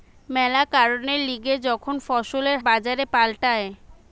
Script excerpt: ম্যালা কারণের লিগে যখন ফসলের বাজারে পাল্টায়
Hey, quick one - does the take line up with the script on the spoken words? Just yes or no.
yes